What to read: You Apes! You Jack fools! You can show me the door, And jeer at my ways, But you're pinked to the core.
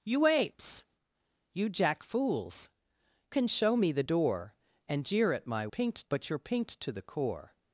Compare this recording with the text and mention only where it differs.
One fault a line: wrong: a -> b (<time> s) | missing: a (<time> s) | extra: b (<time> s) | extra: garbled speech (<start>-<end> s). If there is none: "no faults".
missing: You (2.7 s)
wrong: ways -> pinked (5.7 s)